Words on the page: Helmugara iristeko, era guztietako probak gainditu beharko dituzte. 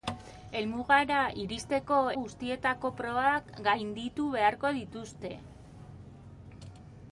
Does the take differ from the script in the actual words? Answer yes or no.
yes